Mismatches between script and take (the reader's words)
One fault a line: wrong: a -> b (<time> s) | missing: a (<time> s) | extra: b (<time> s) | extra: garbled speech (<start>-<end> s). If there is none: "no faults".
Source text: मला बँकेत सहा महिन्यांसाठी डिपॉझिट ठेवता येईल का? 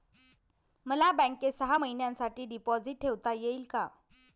no faults